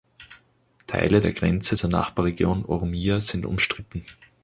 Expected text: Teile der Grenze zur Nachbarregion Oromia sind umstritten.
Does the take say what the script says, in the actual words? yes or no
yes